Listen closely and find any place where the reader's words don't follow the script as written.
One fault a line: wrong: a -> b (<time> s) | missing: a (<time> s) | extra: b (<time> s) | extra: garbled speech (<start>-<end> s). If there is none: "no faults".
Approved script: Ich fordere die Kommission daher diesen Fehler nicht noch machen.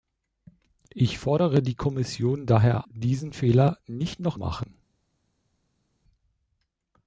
no faults